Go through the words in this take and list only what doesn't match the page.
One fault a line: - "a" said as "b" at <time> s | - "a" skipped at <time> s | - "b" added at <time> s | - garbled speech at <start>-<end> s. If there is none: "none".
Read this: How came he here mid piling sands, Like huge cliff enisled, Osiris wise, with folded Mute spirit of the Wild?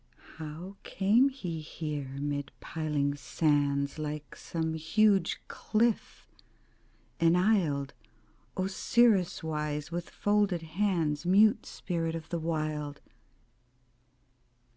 - "some" added at 4.3 s
- "hands" added at 10.6 s